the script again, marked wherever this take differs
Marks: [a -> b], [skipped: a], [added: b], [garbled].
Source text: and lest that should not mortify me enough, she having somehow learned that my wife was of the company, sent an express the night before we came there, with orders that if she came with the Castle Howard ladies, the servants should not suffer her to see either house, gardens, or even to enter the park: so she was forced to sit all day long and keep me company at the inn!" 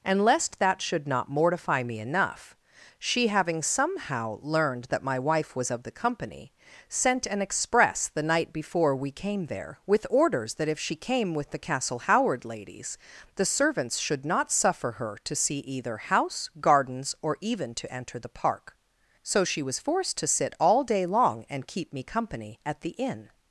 and lest that should not mortify me enough, she having somehow learned that my wife was of the company, sent an express the night before we came there, with orders that if she came with the Castle Howard ladies, the servants should not suffer her to see either house, gardens, or even to enter the park: so she was forced to sit all day long and keep me company at the inn!"